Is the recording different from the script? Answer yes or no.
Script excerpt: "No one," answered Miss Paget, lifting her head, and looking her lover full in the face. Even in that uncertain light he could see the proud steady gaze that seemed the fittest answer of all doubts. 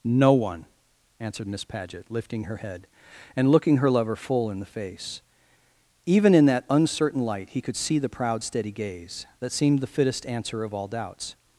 no